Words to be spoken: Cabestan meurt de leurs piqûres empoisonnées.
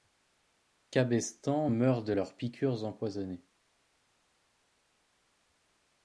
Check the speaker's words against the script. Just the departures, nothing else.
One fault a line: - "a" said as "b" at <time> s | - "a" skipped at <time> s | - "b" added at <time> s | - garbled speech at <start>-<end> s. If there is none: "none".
none